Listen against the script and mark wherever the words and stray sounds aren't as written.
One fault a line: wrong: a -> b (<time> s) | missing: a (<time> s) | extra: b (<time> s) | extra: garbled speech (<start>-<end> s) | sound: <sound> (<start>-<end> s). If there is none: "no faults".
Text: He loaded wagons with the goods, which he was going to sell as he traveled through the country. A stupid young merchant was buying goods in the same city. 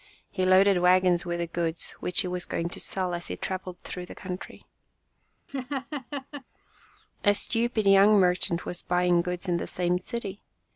sound: laugh (5.5-6.4 s)